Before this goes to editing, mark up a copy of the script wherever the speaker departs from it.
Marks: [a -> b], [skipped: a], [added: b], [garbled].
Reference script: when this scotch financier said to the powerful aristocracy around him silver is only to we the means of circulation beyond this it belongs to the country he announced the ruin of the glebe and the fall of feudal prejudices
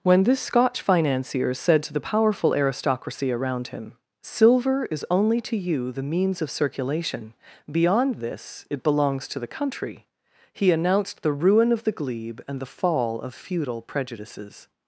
when this scotch financier said to the powerful aristocracy around him silver is only to [we -> you] the means of circulation beyond this it belongs to the country he announced the ruin of the glebe and the fall of feudal prejudices